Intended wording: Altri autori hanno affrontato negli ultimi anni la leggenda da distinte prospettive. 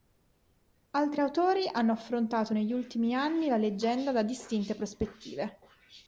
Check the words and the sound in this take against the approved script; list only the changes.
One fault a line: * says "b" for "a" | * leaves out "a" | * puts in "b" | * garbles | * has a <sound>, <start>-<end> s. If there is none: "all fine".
all fine